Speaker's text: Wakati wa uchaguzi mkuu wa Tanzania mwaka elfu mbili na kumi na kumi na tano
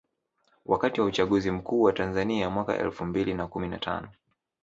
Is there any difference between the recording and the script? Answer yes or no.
yes